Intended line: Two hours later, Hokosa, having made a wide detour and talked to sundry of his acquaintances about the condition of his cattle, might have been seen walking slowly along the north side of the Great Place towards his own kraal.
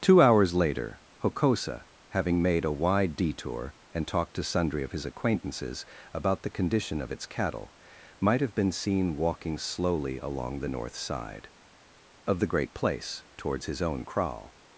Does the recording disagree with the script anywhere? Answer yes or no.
yes